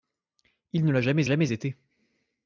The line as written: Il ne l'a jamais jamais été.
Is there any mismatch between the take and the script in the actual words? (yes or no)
no